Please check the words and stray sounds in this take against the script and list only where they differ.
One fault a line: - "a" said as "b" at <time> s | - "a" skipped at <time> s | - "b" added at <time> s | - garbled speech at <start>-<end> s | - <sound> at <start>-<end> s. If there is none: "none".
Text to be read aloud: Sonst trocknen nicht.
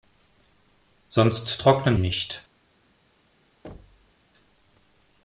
- thud at 3.6-4.1 s